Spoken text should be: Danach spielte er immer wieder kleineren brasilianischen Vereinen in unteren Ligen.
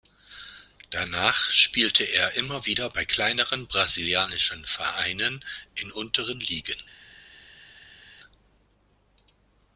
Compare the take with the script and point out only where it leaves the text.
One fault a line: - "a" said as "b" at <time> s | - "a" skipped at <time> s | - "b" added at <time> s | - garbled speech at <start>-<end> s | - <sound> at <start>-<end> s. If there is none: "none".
- "bei" added at 2.9 s